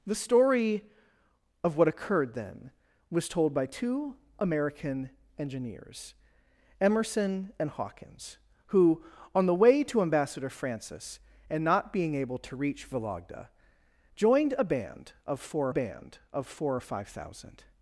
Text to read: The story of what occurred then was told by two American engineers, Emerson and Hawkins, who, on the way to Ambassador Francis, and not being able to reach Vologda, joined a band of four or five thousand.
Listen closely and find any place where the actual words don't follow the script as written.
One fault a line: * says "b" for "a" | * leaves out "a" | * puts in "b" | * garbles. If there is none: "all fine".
* puts in "band of four"